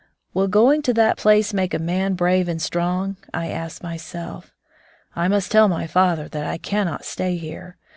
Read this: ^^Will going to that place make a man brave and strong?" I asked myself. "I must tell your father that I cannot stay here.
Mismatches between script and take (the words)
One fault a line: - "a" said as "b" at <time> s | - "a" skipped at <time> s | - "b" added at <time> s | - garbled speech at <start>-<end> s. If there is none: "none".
- "your" said as "my" at 5.7 s